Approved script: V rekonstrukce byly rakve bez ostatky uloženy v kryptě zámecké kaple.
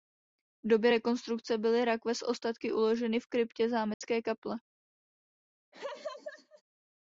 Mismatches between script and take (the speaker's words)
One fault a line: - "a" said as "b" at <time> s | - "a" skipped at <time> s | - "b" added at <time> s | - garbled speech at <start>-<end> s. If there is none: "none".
- "době" added at 0.7 s
- "bez" said as "s" at 2.1 s